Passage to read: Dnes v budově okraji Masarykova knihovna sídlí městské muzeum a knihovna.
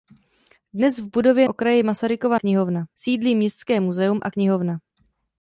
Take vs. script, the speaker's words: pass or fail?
pass